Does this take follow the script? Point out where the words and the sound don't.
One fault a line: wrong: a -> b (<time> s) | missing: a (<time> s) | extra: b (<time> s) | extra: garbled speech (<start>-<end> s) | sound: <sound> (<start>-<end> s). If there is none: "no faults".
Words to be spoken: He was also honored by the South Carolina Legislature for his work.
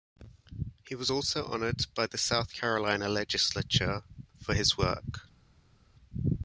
no faults